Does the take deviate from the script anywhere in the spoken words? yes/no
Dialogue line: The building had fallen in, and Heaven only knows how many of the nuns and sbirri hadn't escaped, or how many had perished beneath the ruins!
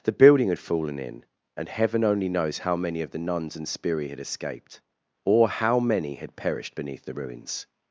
yes